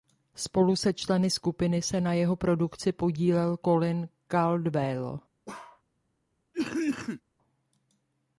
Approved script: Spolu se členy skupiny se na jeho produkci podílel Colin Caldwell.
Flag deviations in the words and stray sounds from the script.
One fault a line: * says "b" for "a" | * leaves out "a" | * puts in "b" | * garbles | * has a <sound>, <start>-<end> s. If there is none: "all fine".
* has a bark, 5.5-5.8 s
* has a cough, 6.5-7.2 s